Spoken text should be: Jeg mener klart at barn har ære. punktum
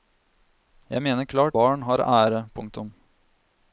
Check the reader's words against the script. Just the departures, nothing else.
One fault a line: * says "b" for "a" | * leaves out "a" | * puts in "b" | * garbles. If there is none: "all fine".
* leaves out "at"